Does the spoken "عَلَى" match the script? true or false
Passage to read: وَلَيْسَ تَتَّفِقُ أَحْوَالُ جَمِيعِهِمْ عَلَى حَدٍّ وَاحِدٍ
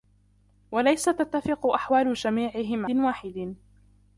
false